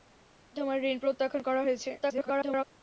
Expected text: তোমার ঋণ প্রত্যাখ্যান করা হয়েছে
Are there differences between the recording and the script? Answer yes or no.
yes